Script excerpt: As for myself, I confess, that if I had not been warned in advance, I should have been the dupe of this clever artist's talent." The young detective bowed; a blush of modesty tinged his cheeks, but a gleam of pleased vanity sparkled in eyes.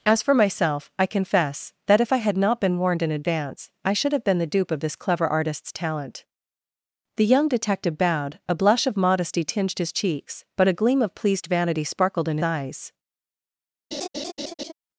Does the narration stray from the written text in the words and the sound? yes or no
yes